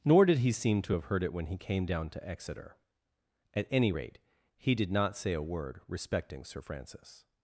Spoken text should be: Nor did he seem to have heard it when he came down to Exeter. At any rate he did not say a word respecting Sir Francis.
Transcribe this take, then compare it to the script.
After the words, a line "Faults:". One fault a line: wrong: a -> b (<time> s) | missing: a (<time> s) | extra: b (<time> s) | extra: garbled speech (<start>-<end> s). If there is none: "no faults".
Nor did he seem to have heard it when he came down to Exeter. At any rate he did not say a word respecting Sir Francis.
Faults:
no faults